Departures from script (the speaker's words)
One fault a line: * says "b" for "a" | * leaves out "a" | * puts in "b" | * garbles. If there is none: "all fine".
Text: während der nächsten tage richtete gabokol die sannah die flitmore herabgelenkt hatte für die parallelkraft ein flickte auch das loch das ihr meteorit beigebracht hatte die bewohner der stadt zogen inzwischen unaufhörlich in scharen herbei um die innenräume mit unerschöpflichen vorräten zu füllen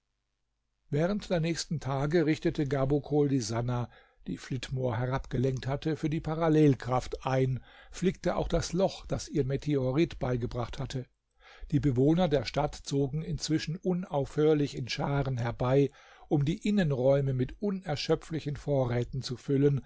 all fine